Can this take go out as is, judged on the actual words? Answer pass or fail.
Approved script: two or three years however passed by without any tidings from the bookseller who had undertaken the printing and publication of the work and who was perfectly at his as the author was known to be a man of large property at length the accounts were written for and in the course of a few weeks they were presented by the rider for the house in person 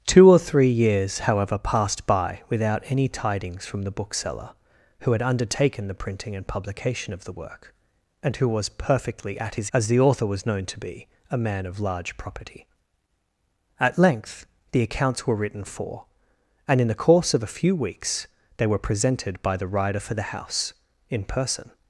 pass